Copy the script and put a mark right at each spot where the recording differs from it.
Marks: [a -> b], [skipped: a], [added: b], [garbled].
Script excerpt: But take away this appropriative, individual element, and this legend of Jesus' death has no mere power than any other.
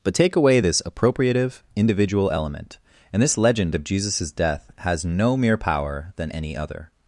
But take away this appropriative, individual element, and this legend of Jesus' death has no mere power than any other.